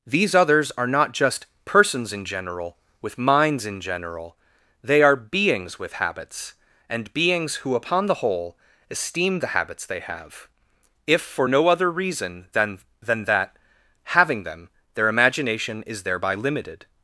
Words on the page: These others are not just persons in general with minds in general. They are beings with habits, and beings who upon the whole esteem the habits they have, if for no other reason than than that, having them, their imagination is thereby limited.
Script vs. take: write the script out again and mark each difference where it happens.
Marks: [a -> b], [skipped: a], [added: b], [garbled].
These others are not just persons in general with minds in general. They are beings with habits, and beings who upon the whole esteem the habits they have, if for no other reason than than that, having them, their imagination is thereby limited.